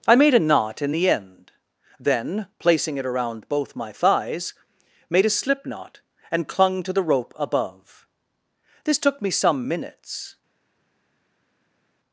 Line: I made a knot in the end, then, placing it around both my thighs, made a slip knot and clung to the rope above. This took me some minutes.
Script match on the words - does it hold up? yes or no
yes